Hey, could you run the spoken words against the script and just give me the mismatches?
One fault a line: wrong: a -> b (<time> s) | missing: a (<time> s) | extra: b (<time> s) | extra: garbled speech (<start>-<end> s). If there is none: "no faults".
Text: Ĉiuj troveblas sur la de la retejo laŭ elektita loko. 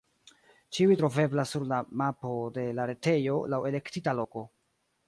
extra: mapo (2.0 s)